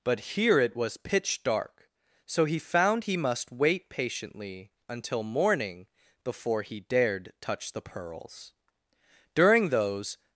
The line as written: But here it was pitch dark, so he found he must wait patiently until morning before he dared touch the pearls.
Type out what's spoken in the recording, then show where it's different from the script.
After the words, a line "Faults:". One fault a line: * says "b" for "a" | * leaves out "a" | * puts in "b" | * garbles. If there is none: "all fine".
But here it was pitch dark, so he found he must wait patiently until morning before he dared touch the pearls. During those
Faults:
* puts in "During those"